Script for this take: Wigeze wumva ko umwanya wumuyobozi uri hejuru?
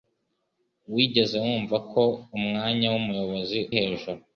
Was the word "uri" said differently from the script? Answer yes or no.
yes